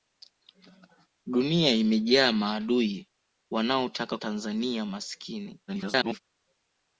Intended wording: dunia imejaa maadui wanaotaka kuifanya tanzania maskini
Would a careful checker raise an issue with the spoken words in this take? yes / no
yes